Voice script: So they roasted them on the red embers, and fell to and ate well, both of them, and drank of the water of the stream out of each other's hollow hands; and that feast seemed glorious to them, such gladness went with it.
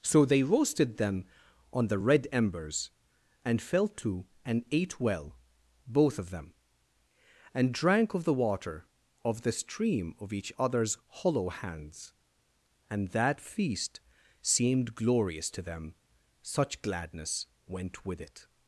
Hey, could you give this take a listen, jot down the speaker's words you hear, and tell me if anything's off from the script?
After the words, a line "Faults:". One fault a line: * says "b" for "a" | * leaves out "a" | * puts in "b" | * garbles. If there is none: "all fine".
So they roasted them on the red embers, and fell to and ate well, both of them, and drank of the water of the stream of each other's hollow hands; and that feast seemed glorious to them, such gladness went with it.
Faults:
* leaves out "out"